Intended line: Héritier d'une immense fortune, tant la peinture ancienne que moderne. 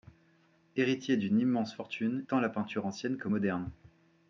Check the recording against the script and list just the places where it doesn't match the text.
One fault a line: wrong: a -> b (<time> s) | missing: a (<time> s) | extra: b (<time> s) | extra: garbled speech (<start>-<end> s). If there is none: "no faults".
no faults